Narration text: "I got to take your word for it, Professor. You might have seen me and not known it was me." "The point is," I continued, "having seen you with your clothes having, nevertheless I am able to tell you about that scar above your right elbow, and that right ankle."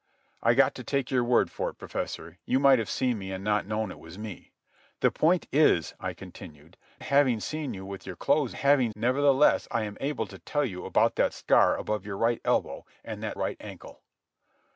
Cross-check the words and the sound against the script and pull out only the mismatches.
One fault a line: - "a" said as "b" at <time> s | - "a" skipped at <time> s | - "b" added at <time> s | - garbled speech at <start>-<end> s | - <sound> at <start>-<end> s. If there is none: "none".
none